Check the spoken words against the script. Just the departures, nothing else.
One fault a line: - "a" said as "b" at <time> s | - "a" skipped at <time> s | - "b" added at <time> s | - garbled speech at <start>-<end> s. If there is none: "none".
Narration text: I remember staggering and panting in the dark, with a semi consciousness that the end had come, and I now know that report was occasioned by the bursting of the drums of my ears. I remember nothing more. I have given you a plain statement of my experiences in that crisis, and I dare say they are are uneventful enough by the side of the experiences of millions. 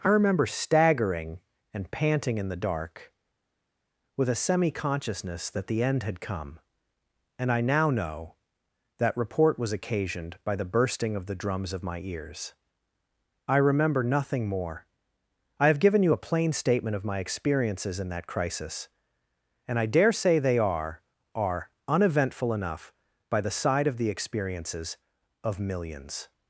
none